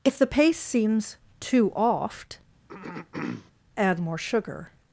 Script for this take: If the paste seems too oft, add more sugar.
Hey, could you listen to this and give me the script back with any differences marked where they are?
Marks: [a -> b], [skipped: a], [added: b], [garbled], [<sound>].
If the paste seems too oft, [throat clearing] add more sugar.